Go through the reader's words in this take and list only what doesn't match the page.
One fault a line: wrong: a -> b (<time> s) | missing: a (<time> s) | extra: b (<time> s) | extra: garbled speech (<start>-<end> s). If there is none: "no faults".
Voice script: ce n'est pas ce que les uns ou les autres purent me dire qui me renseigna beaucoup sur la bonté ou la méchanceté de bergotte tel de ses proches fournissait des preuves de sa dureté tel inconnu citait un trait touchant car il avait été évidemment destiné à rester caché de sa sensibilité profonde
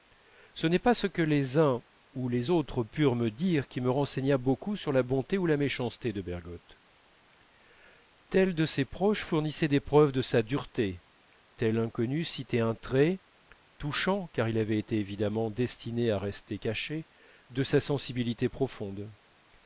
no faults